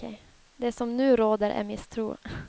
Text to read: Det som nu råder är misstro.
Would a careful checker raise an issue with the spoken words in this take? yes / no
no